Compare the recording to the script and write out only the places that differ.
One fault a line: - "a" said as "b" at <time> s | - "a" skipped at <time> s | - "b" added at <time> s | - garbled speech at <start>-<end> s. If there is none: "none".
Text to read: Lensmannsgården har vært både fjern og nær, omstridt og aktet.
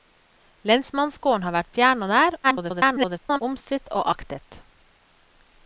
- "både" skipped at 1.7 s
- garbled speech at 2.4-3.4 s